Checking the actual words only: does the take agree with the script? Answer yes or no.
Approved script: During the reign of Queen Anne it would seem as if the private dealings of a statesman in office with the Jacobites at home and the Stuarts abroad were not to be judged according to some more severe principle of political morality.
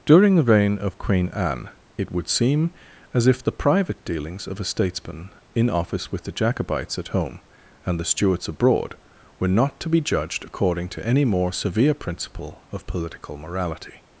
no